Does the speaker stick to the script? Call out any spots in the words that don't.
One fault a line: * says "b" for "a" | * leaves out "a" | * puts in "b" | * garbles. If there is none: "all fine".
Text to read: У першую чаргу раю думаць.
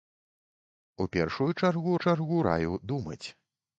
* puts in "чаргу"